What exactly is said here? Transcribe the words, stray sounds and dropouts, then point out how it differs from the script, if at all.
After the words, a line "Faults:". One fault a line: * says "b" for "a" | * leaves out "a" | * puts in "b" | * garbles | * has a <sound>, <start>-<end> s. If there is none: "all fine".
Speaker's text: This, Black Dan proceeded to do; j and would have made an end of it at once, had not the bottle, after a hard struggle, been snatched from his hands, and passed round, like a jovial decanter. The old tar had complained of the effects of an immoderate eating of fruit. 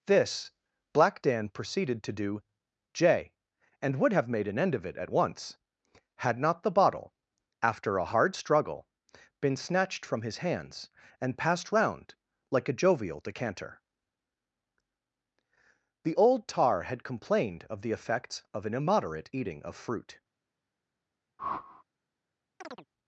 This, Black Dan proceeded to do; j and would have made an end of it at once, had not the bottle, after a hard struggle, been snatched from his hands, and passed round, like a jovial decanter. The old tar had complained of the effects of an immoderate eating of fruit.
Faults:
* has a whoosh, 21.4-21.8 s
* has a chirp, 22.6-22.9 s